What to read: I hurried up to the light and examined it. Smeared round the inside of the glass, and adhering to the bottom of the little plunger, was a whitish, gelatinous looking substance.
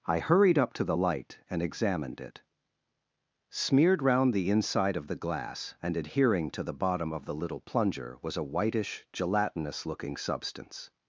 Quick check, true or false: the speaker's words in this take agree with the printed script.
true